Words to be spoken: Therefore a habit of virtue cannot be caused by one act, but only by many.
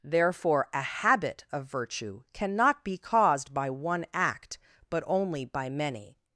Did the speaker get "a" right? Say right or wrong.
right